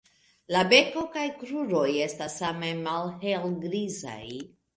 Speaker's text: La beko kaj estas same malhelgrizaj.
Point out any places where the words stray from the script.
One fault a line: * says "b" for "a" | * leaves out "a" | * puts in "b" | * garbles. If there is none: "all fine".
* puts in "kruroj"